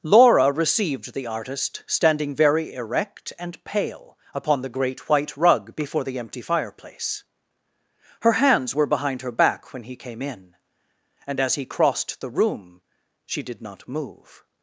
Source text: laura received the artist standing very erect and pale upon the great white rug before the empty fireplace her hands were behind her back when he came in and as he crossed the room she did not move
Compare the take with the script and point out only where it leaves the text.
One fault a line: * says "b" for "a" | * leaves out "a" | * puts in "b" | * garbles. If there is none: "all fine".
all fine